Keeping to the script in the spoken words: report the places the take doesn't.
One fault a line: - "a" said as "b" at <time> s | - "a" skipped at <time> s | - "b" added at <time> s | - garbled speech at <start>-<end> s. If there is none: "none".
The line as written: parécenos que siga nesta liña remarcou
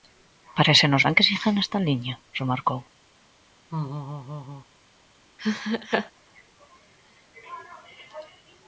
- "ben" added at 1.0 s